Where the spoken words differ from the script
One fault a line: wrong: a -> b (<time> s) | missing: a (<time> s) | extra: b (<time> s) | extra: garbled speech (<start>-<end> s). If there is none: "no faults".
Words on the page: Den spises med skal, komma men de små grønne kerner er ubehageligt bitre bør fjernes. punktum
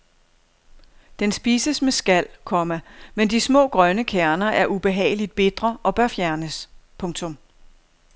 extra: og (5.8 s)